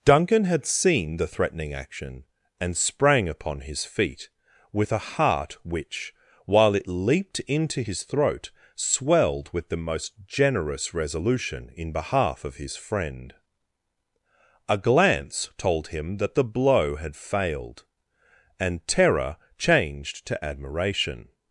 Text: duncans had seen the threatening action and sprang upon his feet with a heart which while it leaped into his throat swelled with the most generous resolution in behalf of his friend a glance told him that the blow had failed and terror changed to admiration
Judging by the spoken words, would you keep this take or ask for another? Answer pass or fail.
fail